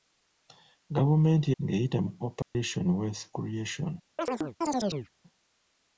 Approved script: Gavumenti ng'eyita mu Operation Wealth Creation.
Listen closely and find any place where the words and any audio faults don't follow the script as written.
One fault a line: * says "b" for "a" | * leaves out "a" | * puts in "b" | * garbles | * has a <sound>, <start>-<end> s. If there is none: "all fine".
* has a dropout, 2.4-2.5 s
* has a chirp, 4.2-5.1 s